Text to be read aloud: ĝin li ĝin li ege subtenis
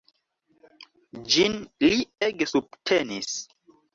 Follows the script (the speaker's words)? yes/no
no